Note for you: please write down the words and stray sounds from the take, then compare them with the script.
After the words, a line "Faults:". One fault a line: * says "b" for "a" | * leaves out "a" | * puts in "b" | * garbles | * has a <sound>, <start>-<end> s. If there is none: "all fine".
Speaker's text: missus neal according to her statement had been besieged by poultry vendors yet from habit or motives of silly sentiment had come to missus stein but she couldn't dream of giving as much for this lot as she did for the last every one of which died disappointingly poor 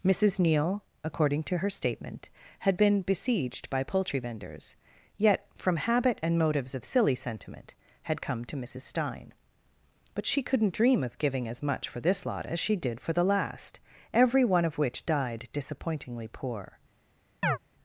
missus neal according to her statement had been besieged by poultry vendors yet from habit and motives of silly sentiment had come to missus stein but she couldn't dream of giving as much for this lot as she did for the last every one of which died disappointingly poor
Faults:
* says "and" for "or"
* has a chirp, 17.4-17.6 s